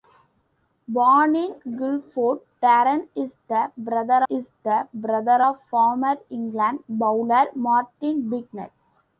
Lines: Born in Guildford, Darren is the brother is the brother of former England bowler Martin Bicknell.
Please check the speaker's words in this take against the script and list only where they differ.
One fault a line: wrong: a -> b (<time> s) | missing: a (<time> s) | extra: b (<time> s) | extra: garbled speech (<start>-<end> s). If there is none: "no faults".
no faults